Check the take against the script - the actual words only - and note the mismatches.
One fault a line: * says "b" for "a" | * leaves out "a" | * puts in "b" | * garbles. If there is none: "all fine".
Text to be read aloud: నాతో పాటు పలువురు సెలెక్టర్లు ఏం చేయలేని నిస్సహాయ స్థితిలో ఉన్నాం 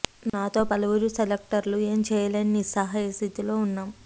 * leaves out "పాటు"